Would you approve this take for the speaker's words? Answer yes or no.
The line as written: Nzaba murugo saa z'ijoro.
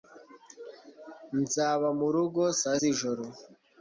yes